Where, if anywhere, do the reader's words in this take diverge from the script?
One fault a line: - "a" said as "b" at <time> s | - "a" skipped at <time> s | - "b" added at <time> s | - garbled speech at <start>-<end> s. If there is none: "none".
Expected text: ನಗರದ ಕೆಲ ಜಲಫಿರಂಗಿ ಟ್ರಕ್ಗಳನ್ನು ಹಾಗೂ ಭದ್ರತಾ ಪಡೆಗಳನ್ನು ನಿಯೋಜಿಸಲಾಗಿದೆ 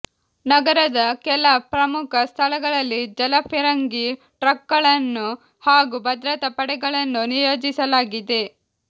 - "ಪ್ರಮುಖ ಸ್ಥಳಗಳಲ್ಲಿ" added at 1.7 s